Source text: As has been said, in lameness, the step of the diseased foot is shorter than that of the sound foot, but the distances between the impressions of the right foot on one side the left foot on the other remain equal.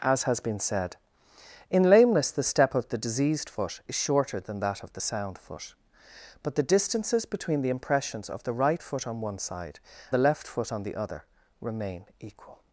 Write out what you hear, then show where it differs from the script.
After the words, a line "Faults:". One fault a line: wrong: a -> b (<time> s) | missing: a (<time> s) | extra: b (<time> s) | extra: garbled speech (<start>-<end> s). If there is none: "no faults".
As has been said, in lameness, the step of the diseased foot is shorter than that of the sound foot, but the distances between the impressions of the right foot on one side the left foot on the other remain equal.
Faults:
no faults